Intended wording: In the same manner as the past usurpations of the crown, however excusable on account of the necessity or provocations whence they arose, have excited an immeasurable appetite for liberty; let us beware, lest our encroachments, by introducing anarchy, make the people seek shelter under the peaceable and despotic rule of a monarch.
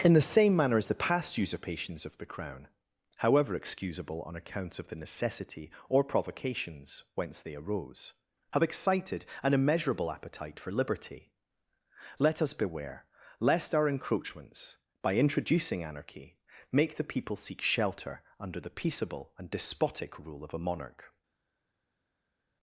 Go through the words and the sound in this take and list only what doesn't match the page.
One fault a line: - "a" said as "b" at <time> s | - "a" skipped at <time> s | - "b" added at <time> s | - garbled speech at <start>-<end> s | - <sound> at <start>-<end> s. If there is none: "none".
none